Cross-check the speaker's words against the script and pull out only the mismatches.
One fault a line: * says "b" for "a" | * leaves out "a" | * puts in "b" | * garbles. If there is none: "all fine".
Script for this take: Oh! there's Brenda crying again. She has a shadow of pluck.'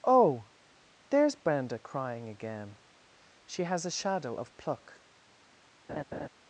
all fine